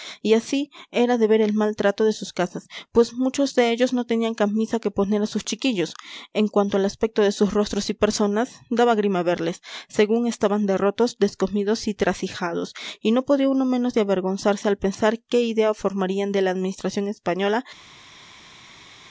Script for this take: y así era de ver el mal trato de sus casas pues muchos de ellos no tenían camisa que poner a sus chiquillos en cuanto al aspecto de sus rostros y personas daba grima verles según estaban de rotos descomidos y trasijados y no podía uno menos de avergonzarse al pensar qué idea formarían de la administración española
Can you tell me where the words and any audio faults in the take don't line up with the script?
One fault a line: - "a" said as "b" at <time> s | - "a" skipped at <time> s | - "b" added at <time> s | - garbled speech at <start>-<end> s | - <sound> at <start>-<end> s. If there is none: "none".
none